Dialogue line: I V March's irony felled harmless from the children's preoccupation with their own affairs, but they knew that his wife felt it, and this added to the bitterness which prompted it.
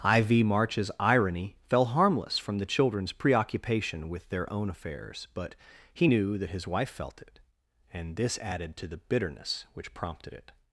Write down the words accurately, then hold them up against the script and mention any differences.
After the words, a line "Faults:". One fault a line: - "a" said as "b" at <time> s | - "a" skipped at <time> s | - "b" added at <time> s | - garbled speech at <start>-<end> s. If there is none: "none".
I V March's irony fell harmless from the children's preoccupation with their own affairs, but he knew that his wife felt it, and this added to the bitterness which prompted it.
Faults:
- "felled" said as "fell" at 1.6 s
- "they" said as "he" at 5.9 s